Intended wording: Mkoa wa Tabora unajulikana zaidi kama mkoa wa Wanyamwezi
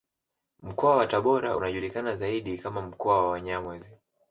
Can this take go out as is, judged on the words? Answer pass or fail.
pass